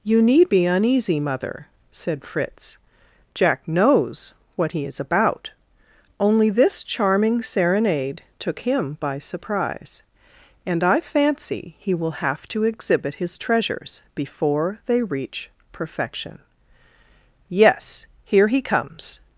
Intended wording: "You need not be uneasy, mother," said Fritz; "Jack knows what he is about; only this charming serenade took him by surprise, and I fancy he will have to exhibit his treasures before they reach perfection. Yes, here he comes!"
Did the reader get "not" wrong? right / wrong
wrong